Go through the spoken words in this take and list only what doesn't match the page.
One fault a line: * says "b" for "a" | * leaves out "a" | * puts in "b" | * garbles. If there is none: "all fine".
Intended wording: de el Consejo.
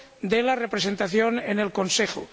* puts in "la representación en"